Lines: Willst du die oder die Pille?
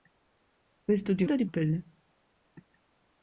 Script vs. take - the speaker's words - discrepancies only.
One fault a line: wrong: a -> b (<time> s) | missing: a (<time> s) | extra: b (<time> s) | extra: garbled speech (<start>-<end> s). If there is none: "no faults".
no faults